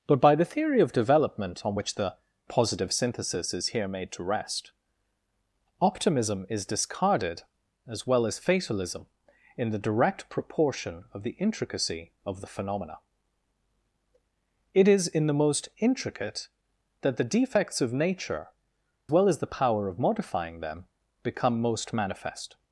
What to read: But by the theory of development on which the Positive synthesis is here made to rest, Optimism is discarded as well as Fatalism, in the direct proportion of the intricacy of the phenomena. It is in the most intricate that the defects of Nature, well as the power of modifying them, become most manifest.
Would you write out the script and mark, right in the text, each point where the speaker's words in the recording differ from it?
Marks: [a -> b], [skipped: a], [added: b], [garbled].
But by the theory of development on which the Positive synthesis is here made to rest, Optimism is discarded as well as Fatalism, in the direct proportion of the intricacy of the phenomena. It is in the most intricate that the defects of Nature, well as the power of modifying them, become most manifest.